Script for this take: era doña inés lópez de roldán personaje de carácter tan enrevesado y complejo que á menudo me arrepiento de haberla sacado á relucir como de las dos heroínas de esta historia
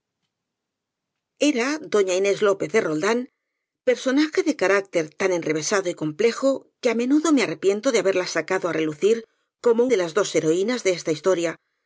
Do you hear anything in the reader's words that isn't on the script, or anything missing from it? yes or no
no